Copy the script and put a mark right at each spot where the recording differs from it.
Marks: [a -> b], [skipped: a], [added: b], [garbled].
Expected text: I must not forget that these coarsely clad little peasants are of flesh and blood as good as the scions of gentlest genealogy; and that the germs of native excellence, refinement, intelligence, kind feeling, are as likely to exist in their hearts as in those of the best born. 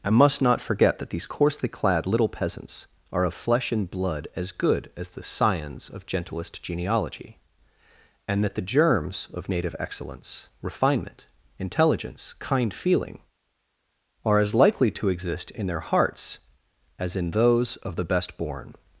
I must not forget that these coarsely clad little peasants are of flesh and blood as good as the scions of gentlest genealogy; and that the germs of native excellence, refinement, intelligence, kind feeling, are as likely to exist in their hearts as in those of the best born.